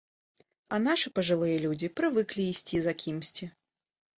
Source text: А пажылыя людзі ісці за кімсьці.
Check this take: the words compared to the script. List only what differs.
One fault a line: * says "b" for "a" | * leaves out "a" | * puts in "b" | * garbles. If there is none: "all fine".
* puts in "нашы"
* puts in "прывыклі"